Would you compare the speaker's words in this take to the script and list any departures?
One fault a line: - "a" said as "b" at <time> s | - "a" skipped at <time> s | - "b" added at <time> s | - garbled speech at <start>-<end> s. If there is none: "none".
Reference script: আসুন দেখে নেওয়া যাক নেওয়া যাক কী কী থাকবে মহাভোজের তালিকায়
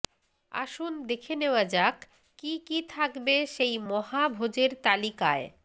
- "নেওয়া যাক" skipped at 2.0 s
- "সেই" added at 3.5 s